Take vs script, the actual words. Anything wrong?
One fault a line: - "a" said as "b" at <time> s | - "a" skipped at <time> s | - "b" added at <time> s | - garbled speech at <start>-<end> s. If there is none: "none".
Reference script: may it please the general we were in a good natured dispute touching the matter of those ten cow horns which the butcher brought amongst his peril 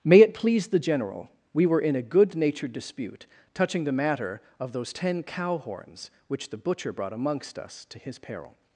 - "us to" added at 7.6 s